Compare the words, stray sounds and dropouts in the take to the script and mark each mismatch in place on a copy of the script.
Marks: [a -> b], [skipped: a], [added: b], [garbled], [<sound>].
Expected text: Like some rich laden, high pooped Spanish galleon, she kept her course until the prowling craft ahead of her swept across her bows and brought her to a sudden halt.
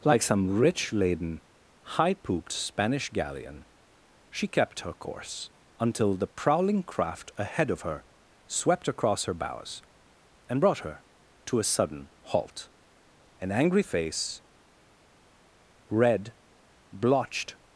Like some rich laden, high pooped Spanish galleon, she kept her course until the prowling craft ahead of her swept across her bows and brought her to a sudden halt. [added: An angry face red blotched]